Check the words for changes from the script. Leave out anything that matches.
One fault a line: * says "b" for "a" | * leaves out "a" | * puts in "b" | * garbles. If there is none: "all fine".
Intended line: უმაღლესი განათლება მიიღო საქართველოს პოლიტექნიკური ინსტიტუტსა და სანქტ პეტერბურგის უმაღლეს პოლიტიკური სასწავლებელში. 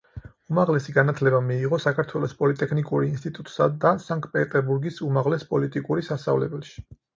all fine